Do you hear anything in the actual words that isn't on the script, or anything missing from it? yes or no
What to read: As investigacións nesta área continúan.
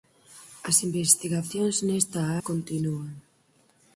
yes